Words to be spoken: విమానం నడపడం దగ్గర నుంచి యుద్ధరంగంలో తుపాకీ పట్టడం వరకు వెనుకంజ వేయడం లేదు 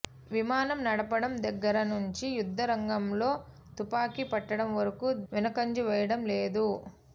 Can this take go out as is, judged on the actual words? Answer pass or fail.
pass